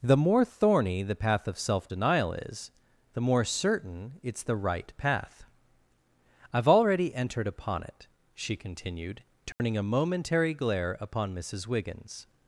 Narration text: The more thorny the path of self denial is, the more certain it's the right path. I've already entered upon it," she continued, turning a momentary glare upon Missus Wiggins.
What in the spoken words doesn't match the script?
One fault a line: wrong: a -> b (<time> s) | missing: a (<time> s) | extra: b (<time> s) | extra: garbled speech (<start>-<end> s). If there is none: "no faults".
no faults